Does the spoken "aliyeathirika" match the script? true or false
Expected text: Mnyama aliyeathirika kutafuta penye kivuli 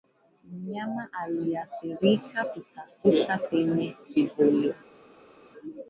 true